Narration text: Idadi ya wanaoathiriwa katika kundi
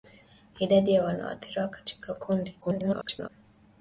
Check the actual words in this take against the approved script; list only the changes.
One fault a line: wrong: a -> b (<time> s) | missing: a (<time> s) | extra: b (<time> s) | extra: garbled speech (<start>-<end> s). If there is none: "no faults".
extra: garbled speech (2.6-3.3 s)